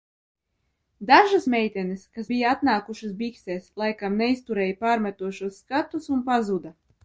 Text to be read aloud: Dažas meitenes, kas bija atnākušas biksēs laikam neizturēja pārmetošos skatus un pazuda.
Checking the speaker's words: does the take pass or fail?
pass